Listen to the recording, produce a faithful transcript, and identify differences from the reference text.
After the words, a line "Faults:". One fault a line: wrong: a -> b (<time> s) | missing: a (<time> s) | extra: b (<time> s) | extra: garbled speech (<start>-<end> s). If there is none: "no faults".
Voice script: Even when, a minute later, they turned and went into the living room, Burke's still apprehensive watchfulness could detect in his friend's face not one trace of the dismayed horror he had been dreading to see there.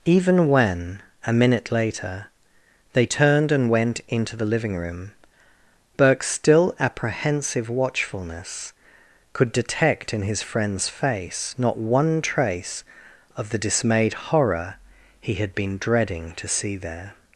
Even when, a minute later, they turned and went into the living room, Burke's still apprehensive watchfulness could detect in his friend's face not one trace of the dismayed horror he had been dreading to see there.
Faults:
no faults